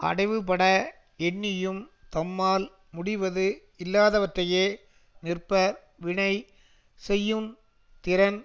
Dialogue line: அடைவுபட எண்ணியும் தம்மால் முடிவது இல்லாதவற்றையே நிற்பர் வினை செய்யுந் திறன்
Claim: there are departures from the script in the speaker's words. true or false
false